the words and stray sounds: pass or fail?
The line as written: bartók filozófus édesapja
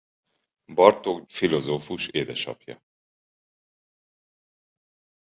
pass